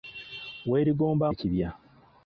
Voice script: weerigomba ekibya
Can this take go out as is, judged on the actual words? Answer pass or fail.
pass